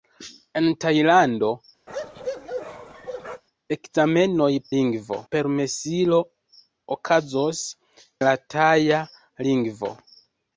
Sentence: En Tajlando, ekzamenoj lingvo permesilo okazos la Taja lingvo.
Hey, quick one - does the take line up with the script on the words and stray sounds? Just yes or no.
no